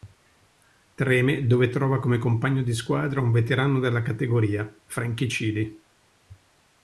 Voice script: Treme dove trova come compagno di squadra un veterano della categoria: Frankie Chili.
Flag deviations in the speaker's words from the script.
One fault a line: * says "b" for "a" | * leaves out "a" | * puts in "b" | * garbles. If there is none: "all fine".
all fine